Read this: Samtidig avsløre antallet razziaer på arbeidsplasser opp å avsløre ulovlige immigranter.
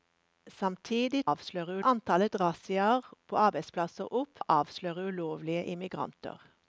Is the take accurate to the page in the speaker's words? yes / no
yes